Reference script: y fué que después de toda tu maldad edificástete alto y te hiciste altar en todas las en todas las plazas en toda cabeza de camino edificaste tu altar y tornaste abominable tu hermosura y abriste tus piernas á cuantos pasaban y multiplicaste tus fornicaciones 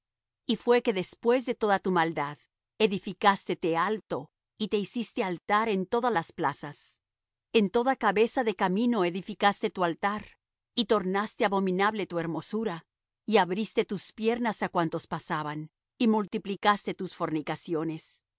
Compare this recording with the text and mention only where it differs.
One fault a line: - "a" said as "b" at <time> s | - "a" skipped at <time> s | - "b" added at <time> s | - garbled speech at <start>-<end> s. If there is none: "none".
- "en todas las" skipped at 6.3 s